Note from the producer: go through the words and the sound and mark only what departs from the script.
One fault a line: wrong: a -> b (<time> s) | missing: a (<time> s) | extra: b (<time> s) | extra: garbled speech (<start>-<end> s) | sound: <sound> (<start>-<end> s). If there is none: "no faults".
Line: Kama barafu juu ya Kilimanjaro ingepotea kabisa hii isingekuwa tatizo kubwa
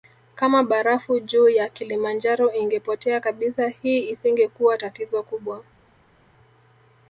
no faults